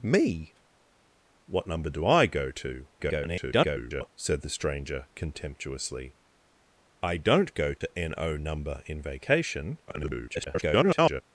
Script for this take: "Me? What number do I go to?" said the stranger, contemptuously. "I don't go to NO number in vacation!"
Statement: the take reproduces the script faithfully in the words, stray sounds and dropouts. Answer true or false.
false